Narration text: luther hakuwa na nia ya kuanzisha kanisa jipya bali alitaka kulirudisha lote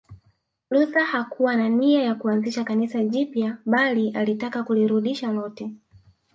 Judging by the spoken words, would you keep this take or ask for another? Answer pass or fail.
pass